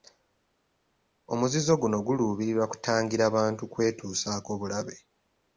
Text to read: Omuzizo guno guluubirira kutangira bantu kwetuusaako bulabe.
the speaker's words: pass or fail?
pass